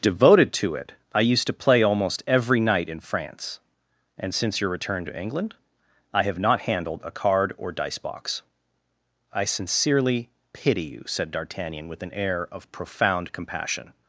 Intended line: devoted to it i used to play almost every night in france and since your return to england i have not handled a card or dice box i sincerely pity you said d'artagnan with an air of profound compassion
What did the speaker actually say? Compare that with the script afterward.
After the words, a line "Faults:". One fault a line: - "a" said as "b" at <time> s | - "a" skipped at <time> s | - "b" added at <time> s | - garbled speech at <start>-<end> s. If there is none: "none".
devoted to it i used to play almost every night in france and since your return to england i have not handled a card or dice box i sincerely pity you said d'artagnan with an air of profound compassion
Faults:
none